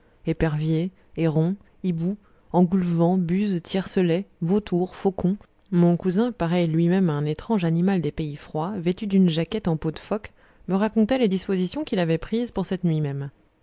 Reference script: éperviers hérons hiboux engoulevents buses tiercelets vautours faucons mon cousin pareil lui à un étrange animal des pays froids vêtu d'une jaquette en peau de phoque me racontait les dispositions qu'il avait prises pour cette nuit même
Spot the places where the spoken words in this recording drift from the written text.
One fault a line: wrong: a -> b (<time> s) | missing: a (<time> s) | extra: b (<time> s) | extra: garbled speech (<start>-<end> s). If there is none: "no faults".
extra: même (6.9 s)